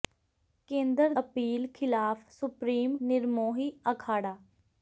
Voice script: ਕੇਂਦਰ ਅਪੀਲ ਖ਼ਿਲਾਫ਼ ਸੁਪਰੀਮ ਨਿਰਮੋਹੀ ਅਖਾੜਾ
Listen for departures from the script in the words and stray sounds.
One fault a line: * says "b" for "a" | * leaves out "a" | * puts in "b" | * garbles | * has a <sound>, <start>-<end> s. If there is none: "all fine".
all fine